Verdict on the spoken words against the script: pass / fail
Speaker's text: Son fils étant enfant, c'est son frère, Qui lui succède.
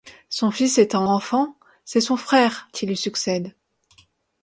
pass